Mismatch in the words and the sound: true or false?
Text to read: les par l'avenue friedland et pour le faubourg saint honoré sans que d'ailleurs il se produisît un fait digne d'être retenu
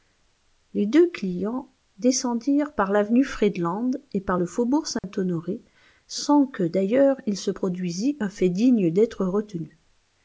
true